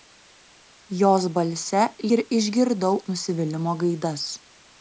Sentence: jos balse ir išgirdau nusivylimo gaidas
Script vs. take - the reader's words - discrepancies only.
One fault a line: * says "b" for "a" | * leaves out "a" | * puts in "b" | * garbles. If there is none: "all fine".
all fine